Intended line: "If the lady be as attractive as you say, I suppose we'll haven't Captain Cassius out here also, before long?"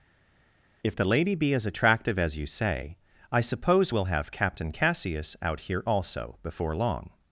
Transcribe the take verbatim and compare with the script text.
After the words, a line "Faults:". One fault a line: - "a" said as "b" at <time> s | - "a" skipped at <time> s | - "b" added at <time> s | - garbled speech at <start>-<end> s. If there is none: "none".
"If the lady be as attractive as you say, I suppose we'll have Captain Cassius out here also, before long?"
Faults:
- "haven't" said as "have" at 4.1 s